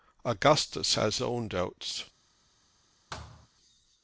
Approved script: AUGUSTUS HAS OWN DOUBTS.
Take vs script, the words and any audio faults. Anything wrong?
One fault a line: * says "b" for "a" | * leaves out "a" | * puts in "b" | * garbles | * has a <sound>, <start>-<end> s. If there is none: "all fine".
* has a thud, 3.1-3.5 s